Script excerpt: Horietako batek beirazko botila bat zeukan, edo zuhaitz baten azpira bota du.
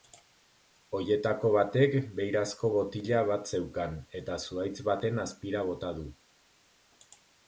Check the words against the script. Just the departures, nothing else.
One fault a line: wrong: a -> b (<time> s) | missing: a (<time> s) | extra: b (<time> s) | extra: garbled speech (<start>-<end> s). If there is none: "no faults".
wrong: edo -> eta (4.2 s)